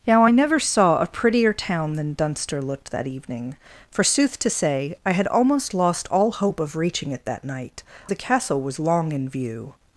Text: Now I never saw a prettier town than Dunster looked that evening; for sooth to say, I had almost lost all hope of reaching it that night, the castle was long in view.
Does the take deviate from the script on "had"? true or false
false